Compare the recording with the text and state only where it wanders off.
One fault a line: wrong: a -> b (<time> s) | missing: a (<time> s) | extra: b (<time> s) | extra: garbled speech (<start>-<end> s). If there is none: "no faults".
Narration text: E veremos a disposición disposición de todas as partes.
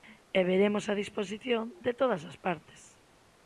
missing: disposición (1.6 s)